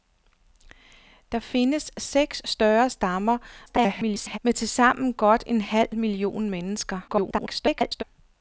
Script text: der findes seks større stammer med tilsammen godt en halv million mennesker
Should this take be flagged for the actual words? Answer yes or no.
yes